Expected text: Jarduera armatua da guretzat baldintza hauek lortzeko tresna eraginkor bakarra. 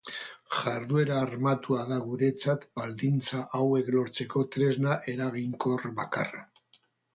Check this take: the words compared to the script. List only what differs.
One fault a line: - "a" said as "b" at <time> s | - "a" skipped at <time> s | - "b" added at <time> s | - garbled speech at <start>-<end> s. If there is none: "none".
none